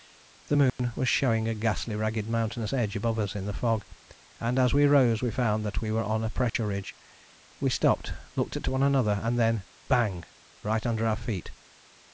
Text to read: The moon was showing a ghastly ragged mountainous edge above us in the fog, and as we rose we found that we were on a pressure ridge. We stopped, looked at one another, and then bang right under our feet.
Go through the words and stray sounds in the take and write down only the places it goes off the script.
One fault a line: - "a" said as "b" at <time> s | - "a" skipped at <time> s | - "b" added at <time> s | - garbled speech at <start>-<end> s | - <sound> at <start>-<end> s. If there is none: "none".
- dropout at 0.7-0.8 s
- dropout at 6.5-6.5 s